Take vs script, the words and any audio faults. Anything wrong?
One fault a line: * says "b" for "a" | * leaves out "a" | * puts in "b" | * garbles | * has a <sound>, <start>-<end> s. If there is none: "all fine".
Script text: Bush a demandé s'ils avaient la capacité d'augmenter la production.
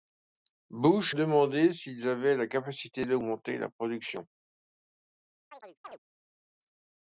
* leaves out "a"
* has a chirp, 5.5-6.0 s